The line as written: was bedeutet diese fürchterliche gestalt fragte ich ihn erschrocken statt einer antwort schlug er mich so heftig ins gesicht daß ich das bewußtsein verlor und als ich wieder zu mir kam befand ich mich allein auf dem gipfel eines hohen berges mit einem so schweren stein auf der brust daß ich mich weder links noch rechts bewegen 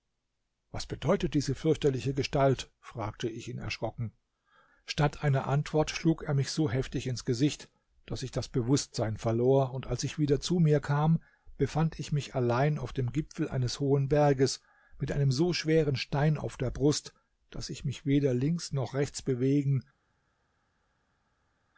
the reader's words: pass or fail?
pass